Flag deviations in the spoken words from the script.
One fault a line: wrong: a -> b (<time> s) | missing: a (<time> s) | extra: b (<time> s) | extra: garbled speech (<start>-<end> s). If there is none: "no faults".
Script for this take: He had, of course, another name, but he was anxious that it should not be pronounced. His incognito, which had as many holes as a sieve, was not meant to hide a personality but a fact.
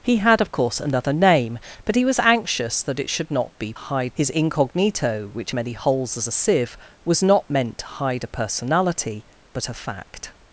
wrong: pronounced -> hide (3.7 s)
missing: had as (5.5 s)